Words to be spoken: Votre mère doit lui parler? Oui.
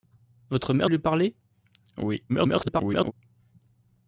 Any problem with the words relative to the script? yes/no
yes